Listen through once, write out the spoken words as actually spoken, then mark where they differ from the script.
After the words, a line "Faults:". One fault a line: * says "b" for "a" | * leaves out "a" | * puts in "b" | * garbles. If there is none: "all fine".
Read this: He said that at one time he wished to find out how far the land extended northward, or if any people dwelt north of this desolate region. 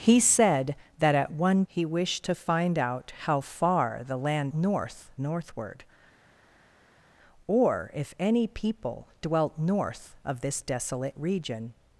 He said that at one he wished to find out how far the land north northward, or if any people dwelt north of this desolate region.
Faults:
* leaves out "time"
* says "north" for "extended"